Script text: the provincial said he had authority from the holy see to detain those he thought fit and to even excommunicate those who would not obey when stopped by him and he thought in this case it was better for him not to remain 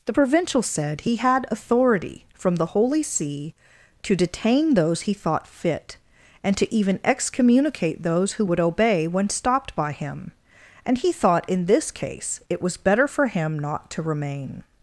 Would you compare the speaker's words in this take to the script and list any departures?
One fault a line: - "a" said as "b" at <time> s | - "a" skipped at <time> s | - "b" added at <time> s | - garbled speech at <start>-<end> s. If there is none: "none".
- "not" skipped at 8.6 s